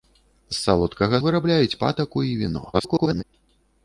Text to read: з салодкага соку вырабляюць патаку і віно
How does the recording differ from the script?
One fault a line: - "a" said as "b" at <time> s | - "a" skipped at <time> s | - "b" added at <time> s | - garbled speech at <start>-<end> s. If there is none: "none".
- "соку" skipped at 1.2 s
- garbled speech at 2.7-3.2 s